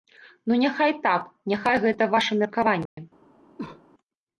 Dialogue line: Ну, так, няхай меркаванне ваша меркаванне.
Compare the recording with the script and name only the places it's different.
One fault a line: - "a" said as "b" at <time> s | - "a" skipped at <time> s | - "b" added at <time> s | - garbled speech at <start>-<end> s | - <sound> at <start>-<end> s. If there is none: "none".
- "няхай" added at 0.6 s
- "меркаванне" said as "гэта" at 1.9 s
- dropout at 2.9-3.0 s
- cough at 3.6-3.8 s